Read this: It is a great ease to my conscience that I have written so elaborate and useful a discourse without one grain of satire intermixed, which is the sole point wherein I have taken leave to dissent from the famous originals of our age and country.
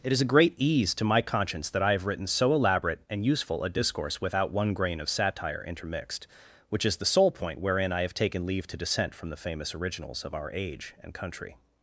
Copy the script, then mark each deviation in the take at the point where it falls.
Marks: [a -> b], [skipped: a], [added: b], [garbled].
It is a great ease to my conscience that I have written so elaborate and useful a discourse without one grain of satire intermixed, which is the sole point wherein I have taken leave to dissent from the famous originals of our age and country.